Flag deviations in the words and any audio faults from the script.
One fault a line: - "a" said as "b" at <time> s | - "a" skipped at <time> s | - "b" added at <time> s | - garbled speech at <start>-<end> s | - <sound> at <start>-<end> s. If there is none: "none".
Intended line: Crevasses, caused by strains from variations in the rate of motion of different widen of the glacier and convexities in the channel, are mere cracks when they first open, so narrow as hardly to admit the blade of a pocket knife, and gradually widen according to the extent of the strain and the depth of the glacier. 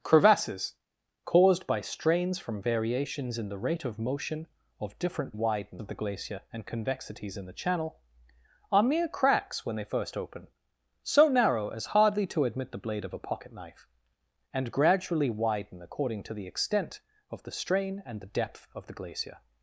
none